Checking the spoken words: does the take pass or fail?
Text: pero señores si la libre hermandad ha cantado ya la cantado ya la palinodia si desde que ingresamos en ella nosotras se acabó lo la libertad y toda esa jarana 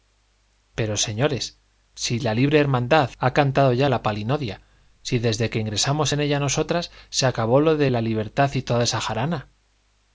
fail